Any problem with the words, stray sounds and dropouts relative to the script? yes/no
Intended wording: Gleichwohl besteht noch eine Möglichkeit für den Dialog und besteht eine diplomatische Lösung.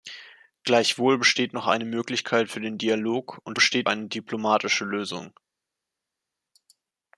no